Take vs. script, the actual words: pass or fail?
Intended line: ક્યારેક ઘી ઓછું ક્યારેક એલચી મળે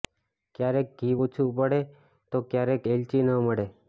fail